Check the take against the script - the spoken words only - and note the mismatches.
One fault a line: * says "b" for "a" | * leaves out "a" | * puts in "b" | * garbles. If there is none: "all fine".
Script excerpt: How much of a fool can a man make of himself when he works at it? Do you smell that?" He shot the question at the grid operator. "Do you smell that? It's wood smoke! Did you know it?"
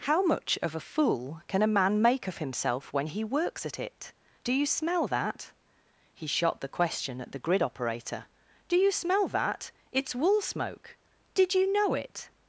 * says "wool" for "wood"